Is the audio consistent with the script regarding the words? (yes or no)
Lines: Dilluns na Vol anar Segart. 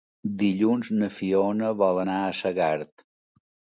no